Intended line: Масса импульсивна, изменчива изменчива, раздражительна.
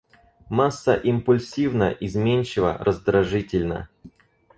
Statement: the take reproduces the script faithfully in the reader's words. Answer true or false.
false